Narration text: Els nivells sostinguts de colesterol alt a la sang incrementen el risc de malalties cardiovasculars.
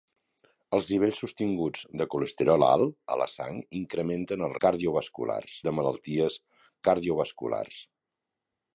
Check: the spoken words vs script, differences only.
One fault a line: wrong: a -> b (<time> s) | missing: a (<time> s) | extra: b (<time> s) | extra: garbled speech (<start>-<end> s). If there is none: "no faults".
wrong: risc -> cardiovasculars (4.7 s)